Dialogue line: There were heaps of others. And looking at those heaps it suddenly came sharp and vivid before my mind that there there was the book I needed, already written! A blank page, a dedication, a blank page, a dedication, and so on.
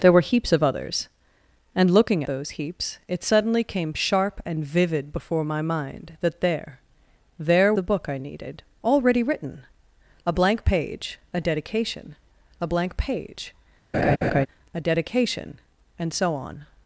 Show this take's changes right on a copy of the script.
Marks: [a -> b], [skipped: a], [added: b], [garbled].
There were heaps of others. And looking [skipped: at] those heaps it suddenly came sharp and vivid before my mind that there there [skipped: was] the book I needed, already written! A blank page, a dedication, a blank page, a dedication, and so on.